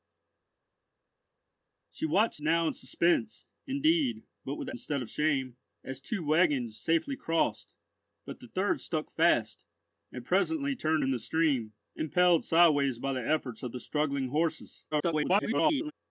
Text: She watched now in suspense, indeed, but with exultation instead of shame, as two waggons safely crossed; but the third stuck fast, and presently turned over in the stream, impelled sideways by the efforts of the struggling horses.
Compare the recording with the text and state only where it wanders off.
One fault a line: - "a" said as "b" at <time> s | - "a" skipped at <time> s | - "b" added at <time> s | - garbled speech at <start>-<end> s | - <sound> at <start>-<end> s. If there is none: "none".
- "exultation" skipped at 4.7 s
- "over" skipped at 11.0 s
- garbled speech at 14.9-15.9 s